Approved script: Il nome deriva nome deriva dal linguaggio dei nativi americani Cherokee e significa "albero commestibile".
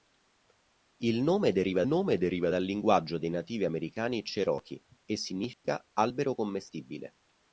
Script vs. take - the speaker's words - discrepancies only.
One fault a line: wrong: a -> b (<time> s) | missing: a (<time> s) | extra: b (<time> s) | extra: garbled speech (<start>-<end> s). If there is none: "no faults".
no faults